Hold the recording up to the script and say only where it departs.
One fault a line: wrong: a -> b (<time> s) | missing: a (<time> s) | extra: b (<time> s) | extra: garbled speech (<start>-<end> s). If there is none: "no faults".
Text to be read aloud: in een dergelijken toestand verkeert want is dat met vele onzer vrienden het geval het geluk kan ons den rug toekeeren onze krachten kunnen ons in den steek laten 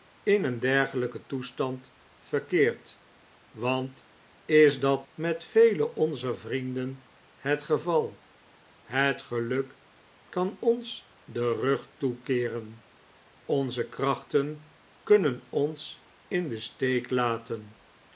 no faults